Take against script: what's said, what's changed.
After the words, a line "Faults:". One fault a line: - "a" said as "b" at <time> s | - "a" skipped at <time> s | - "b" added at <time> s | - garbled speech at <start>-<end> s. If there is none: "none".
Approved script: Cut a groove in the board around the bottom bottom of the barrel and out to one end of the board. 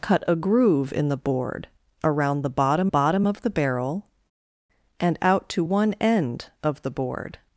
Cut a groove in the board around the bottom bottom of the barrel and out to one end of the board.
Faults:
none